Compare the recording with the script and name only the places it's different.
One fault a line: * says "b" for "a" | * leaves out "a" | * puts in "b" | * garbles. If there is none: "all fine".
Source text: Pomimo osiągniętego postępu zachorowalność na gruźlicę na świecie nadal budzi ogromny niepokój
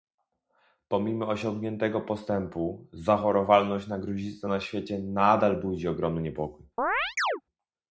all fine